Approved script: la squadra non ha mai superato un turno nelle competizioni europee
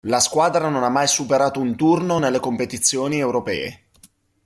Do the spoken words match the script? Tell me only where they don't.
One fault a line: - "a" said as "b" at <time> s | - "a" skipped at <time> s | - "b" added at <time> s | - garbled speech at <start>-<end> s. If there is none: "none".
none